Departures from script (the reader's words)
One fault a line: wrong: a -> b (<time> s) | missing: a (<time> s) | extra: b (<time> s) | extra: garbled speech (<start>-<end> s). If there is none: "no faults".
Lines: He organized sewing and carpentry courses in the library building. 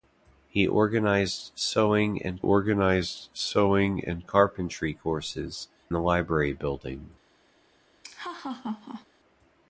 extra: organized sewing and (2.4 s)
missing: in (5.7 s)